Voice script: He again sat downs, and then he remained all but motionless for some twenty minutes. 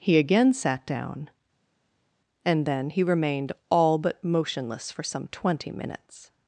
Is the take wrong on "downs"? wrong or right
wrong